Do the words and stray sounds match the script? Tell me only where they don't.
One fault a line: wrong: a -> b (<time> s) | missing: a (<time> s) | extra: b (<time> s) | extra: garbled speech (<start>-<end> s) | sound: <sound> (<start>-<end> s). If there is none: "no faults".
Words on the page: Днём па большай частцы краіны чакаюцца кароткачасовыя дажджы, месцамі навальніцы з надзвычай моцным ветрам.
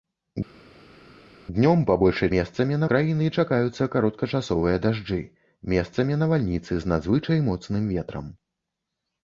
wrong: частцы -> месцамі (2.4 s)